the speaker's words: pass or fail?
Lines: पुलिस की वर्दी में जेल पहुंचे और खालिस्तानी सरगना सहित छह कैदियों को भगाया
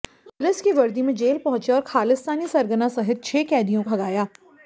fail